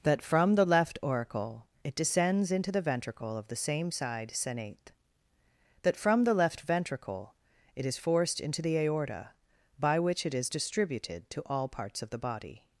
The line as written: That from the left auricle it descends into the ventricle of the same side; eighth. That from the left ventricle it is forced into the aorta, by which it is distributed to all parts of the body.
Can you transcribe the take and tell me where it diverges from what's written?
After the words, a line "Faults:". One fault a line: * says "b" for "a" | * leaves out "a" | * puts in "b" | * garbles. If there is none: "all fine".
That from the left auricle it descends into the ventricle of the same side; senate. That from the left ventricle it is forced into the aorta, by which it is distributed to all parts of the body.
Faults:
* says "senate" for "eighth"